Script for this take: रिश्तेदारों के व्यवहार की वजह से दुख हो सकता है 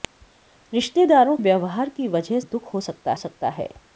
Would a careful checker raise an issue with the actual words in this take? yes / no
yes